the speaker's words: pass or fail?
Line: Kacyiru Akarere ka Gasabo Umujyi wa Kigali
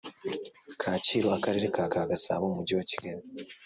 fail